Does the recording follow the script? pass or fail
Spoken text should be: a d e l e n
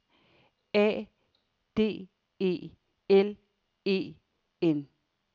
pass